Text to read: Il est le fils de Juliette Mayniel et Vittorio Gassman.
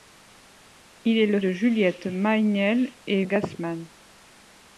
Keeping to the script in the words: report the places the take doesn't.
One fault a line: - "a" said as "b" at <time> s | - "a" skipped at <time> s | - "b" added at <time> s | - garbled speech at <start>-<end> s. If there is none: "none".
- "fils" skipped at 1.4 s
- "Vittorio" skipped at 3.2 s